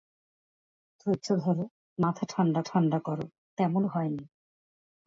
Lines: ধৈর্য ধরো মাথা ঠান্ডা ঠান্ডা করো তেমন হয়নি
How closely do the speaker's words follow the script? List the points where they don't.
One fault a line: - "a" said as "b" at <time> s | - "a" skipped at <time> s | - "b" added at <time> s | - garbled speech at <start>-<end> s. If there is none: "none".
none